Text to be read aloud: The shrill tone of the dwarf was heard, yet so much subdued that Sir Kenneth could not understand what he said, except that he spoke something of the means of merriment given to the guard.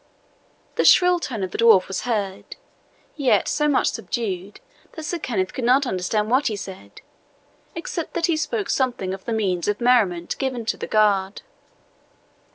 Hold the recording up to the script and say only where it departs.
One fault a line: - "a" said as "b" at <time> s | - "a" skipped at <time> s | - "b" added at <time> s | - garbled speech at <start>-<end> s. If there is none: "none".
none